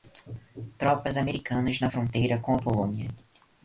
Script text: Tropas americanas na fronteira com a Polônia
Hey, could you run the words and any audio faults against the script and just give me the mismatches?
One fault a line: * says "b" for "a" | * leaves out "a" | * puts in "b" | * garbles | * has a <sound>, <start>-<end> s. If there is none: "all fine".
all fine